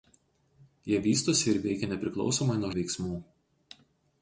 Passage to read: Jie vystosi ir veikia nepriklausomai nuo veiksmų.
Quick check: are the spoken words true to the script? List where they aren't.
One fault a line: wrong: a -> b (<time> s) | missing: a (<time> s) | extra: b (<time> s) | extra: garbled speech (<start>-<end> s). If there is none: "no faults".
no faults